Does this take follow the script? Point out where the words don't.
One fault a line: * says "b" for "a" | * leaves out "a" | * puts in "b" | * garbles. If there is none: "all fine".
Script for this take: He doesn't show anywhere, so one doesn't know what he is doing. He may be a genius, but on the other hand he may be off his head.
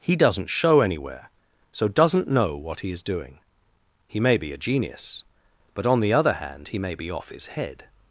* leaves out "one"